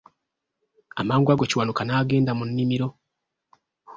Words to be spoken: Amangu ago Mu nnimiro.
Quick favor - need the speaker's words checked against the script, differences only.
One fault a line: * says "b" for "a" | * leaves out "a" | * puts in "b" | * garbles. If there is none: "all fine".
* puts in "Kiwanuka n'agenda"